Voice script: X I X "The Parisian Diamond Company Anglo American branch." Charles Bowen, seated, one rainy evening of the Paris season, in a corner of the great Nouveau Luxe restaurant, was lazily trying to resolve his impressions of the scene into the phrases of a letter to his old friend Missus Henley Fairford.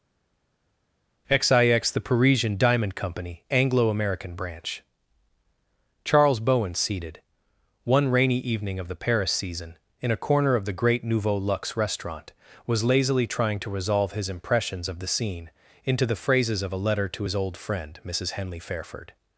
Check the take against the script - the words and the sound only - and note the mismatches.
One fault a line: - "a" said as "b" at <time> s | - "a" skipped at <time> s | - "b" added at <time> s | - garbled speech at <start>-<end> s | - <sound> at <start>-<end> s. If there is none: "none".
none